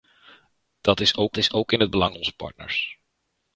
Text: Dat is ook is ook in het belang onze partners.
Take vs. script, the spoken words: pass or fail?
pass